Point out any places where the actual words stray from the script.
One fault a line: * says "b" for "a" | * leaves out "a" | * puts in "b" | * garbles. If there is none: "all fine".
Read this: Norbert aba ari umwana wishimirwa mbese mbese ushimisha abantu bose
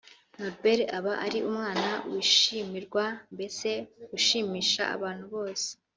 * leaves out "mbese"